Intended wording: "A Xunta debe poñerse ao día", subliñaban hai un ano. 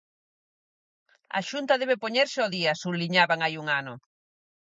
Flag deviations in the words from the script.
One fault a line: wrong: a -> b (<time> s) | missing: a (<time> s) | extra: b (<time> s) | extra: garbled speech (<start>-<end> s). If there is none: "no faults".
no faults